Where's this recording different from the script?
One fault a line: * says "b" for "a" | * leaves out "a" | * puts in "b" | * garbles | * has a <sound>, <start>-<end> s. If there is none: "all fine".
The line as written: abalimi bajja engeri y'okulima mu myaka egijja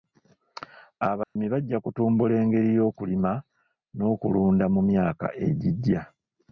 * has a dropout, 1.2-1.4 s
* puts in "kutumbula"
* puts in "n'okulunda"